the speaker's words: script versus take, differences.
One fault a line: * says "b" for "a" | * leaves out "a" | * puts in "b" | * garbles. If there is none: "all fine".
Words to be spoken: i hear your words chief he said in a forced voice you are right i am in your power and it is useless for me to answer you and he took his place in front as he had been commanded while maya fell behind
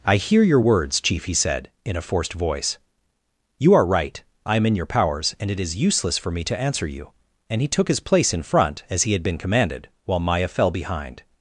* says "powers" for "power"